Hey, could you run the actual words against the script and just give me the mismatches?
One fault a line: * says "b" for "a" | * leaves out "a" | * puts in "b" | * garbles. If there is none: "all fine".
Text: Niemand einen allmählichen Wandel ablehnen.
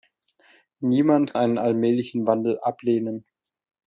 all fine